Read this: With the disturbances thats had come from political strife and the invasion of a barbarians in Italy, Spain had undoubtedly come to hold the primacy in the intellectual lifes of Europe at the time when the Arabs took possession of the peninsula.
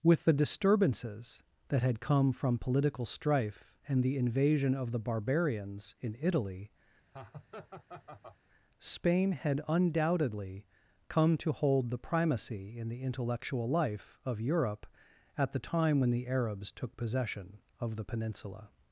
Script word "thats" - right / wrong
wrong